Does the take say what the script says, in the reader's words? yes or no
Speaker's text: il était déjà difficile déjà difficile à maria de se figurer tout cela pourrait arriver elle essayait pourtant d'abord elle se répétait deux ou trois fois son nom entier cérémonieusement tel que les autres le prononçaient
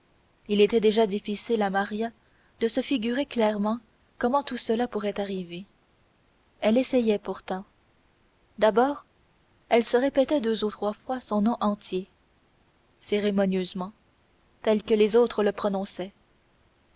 no